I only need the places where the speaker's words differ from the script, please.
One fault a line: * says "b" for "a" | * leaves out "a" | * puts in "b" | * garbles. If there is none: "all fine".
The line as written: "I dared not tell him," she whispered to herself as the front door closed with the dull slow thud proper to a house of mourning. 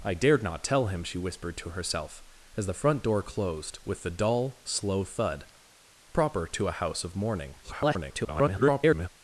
* garbles